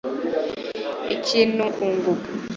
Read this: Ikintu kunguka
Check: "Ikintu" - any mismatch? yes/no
no